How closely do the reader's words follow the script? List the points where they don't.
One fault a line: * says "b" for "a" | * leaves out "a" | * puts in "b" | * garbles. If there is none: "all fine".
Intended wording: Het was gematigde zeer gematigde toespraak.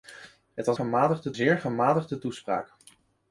all fine